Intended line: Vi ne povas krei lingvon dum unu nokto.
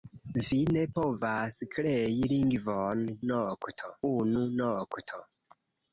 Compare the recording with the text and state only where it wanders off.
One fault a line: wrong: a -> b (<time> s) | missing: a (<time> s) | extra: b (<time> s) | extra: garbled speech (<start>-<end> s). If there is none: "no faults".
wrong: dum -> nokto (3.3 s)